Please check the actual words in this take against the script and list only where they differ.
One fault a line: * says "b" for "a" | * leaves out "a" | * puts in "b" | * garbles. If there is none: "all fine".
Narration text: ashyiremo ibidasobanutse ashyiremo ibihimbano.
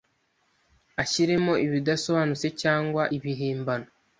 * says "cyangwa" for "ashyiremo"